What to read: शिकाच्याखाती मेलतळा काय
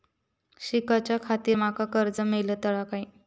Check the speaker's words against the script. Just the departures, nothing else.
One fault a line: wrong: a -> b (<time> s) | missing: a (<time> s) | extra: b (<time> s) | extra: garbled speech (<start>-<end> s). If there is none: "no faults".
extra: माका कर्ज (1.5 s)